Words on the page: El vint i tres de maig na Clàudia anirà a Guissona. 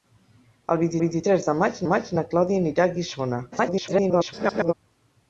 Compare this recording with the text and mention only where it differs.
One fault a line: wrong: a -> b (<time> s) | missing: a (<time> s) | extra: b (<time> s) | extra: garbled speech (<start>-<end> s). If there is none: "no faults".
extra: vint (1.0 s)
extra: maig (1.9 s)
extra: garbled speech (3.5-4.7 s)